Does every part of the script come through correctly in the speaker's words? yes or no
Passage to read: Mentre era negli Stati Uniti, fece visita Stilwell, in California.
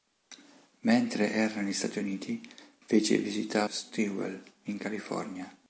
yes